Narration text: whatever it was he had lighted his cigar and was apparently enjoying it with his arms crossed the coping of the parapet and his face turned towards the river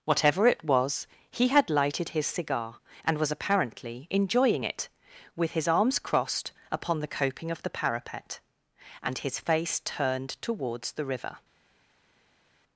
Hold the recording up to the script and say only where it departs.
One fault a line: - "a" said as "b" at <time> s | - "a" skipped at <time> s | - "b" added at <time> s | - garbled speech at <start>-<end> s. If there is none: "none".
- "upon" added at 6.7 s